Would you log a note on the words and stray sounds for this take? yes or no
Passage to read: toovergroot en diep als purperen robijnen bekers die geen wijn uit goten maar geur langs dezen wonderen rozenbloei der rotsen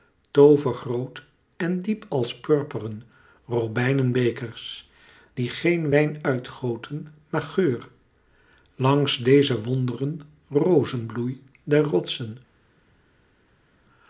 no